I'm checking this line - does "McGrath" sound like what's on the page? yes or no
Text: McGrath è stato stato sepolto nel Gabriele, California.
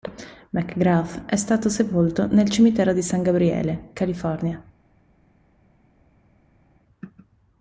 yes